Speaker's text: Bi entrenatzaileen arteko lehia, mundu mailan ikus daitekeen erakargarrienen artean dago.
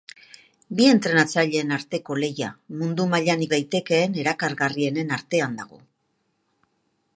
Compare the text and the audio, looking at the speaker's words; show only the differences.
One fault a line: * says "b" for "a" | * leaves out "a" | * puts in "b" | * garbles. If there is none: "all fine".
* leaves out "ikus"